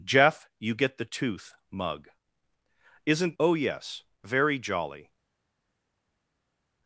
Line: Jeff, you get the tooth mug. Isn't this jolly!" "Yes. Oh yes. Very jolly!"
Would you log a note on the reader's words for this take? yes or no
yes